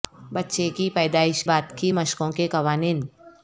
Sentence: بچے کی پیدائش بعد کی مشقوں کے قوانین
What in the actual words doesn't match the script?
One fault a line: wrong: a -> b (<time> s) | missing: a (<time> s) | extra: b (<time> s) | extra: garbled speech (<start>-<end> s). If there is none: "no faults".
no faults